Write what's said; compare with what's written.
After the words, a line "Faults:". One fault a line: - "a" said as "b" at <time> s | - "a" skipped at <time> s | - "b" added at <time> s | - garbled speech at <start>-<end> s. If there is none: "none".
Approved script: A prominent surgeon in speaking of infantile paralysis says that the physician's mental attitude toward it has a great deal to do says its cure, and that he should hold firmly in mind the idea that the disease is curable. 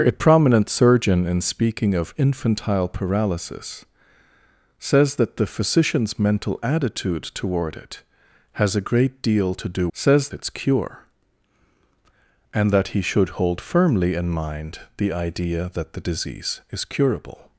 A prominent surgeon in speaking of infantile paralysis says that the physician's mental attitude toward it has a great deal to do says its cure, and that he should hold firmly in mind the idea that the disease is curable.
Faults:
none